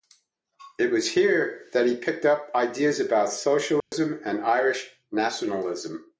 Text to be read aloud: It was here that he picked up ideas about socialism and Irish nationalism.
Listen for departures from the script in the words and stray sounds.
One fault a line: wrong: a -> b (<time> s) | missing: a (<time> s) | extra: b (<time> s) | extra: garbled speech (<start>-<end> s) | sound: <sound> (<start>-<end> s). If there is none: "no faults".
sound: dropout (3.8-3.9 s)